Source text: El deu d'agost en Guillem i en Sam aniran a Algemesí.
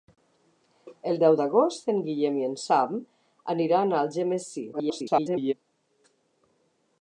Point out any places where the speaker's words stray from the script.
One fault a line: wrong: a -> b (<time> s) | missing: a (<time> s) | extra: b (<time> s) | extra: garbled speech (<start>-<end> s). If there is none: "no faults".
extra: garbled speech (4.7-5.5 s)